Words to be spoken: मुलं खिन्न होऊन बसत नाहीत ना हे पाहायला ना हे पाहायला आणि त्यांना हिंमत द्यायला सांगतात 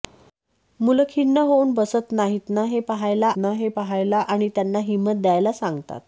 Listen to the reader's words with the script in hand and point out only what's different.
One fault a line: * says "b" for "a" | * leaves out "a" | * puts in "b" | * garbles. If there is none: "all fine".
all fine